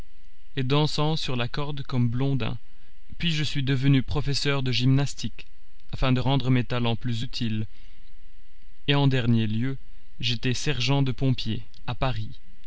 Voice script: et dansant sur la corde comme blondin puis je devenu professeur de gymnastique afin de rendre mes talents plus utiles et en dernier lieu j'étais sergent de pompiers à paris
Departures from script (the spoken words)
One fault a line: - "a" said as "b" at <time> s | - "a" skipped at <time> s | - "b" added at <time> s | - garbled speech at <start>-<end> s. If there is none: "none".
- "suis" added at 3.4 s